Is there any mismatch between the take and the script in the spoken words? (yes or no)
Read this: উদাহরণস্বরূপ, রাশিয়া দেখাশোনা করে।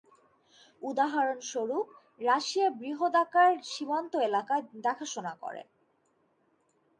yes